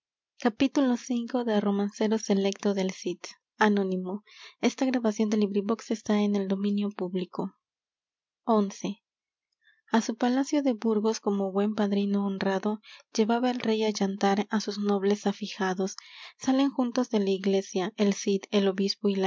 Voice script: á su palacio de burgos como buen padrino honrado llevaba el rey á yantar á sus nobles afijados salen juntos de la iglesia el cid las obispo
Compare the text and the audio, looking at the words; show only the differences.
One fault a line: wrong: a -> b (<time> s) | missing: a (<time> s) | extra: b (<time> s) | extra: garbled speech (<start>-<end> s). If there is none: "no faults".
wrong: las -> el (18.5 s)